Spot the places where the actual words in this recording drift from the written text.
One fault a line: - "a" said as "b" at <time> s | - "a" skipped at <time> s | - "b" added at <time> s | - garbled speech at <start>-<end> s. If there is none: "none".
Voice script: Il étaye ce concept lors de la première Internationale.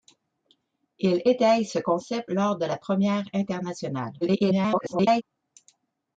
- garbled speech at 4.2-5.2 s